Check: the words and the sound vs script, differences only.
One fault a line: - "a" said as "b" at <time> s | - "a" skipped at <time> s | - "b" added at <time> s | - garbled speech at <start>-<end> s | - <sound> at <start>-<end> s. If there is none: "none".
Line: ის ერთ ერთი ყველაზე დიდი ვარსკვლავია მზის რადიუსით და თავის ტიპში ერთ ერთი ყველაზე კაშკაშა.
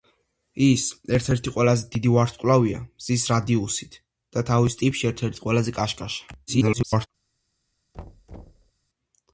- garbled speech at 6.5-7.1 s
- thud at 7.9-8.7 s